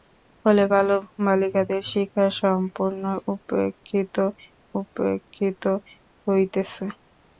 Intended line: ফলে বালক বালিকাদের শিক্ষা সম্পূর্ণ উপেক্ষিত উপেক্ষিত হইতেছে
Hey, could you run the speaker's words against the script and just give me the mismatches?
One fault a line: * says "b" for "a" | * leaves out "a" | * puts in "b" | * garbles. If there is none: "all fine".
all fine